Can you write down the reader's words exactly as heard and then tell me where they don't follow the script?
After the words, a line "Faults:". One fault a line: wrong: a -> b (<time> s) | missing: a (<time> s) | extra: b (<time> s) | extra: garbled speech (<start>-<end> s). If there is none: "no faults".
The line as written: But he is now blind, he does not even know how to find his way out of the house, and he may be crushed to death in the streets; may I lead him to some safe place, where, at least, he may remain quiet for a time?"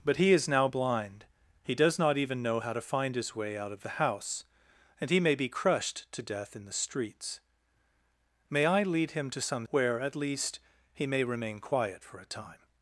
But he is now blind, he does not even know how to find his way out of the house, and he may be crushed to death in the streets; may I lead him to some where, at least, he may remain quiet for a time?"
Faults:
missing: safe place (9.7 s)